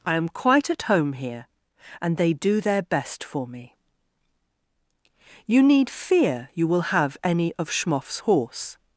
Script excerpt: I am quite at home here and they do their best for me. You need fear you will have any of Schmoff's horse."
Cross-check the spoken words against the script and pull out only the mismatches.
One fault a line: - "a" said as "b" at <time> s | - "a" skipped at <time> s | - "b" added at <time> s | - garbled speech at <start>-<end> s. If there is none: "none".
none